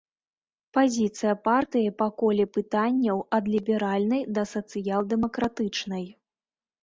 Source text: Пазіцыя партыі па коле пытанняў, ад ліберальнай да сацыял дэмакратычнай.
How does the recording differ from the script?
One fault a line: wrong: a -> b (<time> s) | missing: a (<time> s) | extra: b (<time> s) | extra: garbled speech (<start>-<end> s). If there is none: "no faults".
no faults